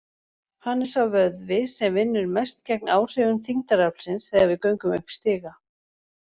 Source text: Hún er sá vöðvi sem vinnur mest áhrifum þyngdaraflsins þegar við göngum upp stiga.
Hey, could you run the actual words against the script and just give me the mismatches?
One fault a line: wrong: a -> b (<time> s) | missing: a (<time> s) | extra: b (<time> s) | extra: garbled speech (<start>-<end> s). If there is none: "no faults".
wrong: Hún -> Hann (0.7 s)
extra: gegn (2.7 s)